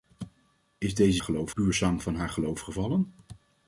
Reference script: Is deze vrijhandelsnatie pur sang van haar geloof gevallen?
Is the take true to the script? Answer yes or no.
no